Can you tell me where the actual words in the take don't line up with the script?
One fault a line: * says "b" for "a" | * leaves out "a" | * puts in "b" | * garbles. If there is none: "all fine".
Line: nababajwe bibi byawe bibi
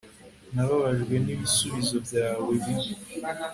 * says "n'ibisubizo" for "bibi"